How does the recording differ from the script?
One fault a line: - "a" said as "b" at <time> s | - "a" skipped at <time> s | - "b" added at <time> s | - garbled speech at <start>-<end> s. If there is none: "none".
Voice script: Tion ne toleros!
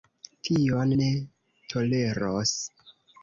none